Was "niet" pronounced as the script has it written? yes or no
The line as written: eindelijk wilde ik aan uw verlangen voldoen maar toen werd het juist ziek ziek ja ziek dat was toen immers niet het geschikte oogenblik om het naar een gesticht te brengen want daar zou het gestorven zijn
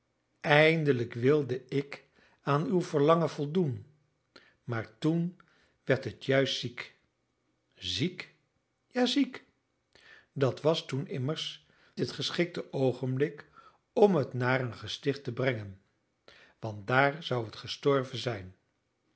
no